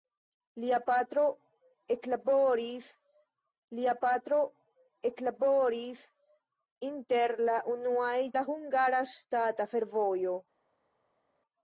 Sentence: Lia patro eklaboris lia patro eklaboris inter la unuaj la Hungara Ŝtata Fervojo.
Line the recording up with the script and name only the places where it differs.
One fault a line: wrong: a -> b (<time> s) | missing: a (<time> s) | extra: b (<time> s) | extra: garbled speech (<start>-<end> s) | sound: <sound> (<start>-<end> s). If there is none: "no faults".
no faults